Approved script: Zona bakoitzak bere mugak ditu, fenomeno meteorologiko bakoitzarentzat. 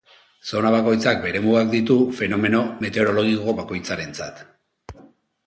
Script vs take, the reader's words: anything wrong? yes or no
no